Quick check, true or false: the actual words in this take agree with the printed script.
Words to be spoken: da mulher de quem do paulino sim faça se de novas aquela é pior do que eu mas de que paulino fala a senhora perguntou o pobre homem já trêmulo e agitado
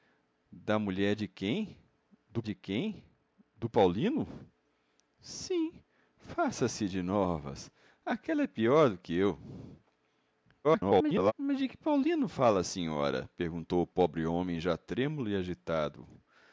false